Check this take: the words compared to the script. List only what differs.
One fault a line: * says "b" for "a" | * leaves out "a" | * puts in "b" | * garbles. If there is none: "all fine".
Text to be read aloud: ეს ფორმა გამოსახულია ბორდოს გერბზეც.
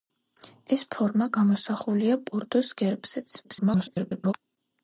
* garbles